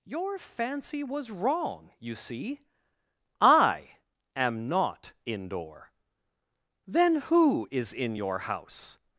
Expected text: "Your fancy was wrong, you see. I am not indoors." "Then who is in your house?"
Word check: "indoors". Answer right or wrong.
wrong